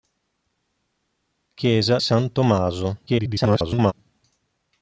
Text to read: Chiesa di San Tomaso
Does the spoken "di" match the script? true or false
false